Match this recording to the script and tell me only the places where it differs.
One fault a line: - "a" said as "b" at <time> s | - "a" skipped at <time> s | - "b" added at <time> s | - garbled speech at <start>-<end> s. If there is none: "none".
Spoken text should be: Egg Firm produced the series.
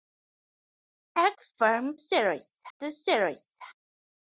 - "produced" said as "series" at 1.9 s